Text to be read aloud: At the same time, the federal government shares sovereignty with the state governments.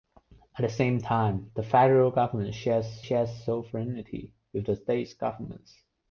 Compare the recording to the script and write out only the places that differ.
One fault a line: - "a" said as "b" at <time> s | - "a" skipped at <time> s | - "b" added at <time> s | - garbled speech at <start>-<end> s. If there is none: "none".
- "shares" added at 3.0 s